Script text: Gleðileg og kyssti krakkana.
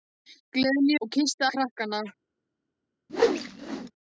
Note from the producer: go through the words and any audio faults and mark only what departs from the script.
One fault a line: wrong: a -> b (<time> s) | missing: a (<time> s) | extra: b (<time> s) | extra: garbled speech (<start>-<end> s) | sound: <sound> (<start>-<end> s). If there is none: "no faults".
sound: whoosh (3.1-3.9 s)